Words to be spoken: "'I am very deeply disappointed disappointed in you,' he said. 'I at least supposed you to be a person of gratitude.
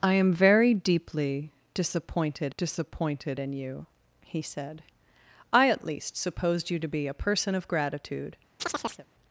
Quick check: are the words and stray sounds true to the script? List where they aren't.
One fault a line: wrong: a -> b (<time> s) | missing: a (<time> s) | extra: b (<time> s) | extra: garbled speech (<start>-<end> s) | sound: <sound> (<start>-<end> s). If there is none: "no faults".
sound: chirp (8.6-9.1 s)